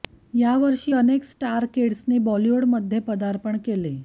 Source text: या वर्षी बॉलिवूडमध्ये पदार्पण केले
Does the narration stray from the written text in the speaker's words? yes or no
yes